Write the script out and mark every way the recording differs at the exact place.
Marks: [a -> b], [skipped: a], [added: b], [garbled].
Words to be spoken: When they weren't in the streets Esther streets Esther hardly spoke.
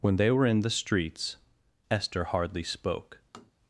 When they [weren't -> were] in the streets Esther [skipped: streets Esther] hardly spoke.